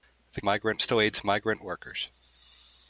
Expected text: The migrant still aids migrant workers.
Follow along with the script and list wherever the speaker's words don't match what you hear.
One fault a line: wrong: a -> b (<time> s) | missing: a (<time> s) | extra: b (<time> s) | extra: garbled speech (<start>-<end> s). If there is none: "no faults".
no faults